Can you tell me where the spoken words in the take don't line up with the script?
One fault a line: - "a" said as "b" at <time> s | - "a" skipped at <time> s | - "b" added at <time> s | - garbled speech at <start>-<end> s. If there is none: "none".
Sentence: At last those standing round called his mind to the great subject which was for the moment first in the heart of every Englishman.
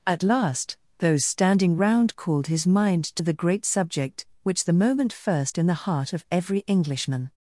- "was for" skipped at 4.6 s